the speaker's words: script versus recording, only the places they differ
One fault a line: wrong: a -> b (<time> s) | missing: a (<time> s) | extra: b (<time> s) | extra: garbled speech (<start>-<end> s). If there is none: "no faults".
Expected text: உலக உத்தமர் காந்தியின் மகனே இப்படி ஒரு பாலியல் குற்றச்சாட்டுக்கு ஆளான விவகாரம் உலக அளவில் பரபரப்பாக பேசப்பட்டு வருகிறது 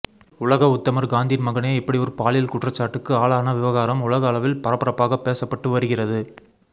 no faults